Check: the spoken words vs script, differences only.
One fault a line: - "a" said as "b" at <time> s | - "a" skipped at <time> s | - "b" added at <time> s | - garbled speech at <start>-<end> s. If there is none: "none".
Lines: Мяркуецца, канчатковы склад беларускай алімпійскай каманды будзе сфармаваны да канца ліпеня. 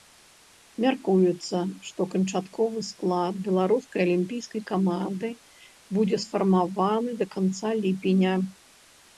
- "што" added at 1.9 s